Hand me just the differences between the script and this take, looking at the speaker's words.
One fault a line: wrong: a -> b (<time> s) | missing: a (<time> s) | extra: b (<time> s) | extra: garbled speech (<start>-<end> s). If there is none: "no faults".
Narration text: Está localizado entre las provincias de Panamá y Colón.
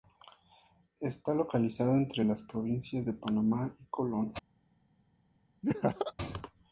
no faults